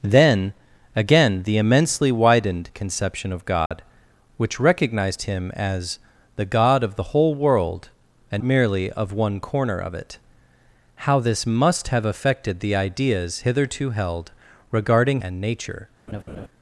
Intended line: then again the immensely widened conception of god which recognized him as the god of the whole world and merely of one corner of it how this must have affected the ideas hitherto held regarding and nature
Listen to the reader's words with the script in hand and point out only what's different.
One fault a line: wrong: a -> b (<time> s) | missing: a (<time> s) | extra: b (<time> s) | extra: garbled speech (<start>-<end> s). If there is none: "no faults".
no faults